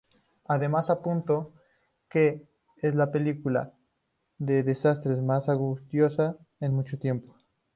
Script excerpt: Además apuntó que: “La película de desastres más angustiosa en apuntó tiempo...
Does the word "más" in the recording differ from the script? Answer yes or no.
no